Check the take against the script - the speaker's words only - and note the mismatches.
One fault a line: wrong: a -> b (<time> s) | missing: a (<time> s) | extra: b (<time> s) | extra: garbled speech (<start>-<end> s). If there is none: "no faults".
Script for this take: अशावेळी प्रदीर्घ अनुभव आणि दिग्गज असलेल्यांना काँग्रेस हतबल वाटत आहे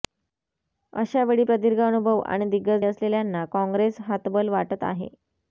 no faults